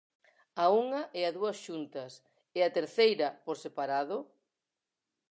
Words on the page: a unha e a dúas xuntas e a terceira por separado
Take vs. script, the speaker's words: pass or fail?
pass